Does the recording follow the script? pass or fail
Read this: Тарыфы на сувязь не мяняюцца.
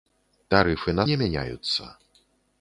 fail